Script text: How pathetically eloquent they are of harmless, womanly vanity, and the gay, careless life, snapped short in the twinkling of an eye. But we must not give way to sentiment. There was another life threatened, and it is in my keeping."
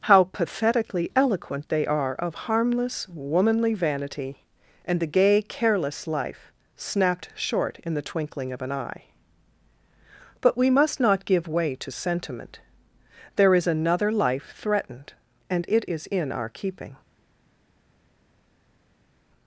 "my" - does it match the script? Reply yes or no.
no